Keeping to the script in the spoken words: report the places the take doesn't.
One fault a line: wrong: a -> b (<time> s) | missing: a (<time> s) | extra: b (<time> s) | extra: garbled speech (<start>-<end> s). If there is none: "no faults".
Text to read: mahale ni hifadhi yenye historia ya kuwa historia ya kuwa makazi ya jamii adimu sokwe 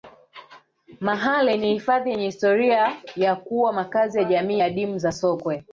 missing: historia ya kuwa (3.7 s)
extra: za (5.0 s)